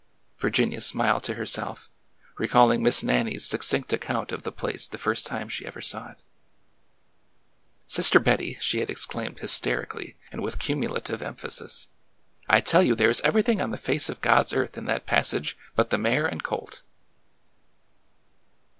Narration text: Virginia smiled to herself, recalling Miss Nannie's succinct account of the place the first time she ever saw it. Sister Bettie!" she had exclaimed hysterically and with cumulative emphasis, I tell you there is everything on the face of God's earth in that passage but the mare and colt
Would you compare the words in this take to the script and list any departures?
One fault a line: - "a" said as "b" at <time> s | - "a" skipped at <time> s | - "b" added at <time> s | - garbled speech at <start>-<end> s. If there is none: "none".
none